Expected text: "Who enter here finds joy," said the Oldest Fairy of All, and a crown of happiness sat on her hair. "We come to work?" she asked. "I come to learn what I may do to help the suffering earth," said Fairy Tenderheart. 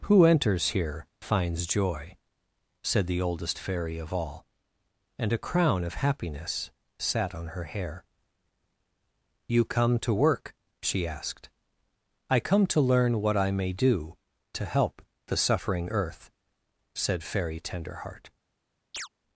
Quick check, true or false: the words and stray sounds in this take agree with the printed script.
false